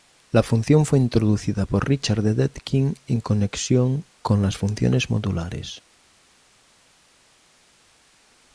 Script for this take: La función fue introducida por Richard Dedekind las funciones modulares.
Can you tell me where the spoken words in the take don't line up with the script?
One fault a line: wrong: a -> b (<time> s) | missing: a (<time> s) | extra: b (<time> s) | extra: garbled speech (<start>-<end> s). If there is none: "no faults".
extra: en conexión con (3.0 s)